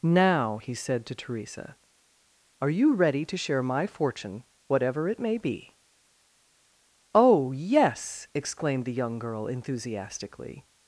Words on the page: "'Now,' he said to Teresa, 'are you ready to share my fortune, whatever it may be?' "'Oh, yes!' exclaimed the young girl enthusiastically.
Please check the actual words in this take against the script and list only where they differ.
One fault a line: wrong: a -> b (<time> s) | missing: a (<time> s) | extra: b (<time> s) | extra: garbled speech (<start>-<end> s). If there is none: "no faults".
no faults